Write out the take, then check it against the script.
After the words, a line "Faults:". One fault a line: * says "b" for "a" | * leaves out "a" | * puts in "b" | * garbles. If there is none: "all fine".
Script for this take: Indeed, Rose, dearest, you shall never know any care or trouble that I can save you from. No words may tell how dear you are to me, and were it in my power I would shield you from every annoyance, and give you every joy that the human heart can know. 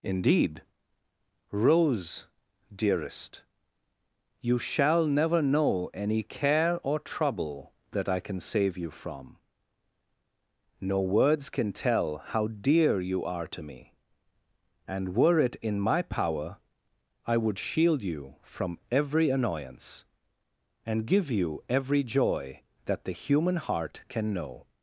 Indeed, Rose, dearest, you shall never know any care or trouble that I can save you from. No words can tell how dear you are to me, and were it in my power I would shield you from every annoyance, and give you every joy that the human heart can know.
Faults:
* says "can" for "may"